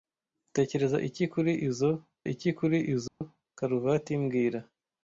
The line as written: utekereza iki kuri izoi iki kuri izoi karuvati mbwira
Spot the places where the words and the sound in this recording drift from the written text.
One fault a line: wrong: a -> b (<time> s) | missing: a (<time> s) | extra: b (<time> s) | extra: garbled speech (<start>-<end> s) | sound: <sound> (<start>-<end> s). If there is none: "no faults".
sound: dropout (3.1-3.2 s)